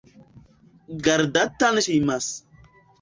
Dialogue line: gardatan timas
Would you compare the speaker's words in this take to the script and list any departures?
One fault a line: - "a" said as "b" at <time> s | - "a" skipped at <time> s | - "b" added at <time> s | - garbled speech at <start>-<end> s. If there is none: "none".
none